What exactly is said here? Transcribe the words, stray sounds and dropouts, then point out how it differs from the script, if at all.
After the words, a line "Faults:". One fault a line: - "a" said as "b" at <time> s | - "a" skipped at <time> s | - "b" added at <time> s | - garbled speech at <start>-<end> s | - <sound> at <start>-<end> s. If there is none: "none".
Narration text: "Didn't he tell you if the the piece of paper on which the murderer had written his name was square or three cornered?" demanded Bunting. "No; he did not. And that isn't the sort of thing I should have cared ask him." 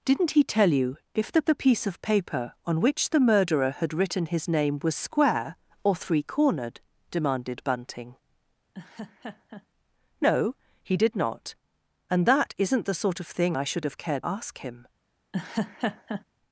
"Didn't he tell you if the the piece of paper on which the murderer had written his name was square or three cornered?" demanded Bunting. "No; he did not. And that isn't the sort of thing I should have cared ask him."
Faults:
- laugh at 8.7-9.7 s
- laugh at 15.3-16.2 s